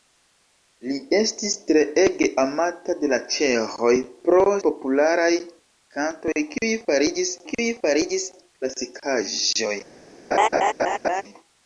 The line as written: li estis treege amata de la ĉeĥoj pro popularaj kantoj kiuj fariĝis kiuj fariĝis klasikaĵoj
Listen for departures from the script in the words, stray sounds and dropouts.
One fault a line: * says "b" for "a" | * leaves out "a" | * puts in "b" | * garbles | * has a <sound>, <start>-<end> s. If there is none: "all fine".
* has a laugh, 10.3-11.2 s